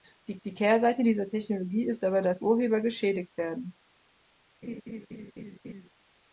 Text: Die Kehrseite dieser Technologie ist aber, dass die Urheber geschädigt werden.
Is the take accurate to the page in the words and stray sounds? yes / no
no